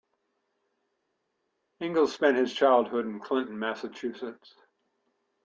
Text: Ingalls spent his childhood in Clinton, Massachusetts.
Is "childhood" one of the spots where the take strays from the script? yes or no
no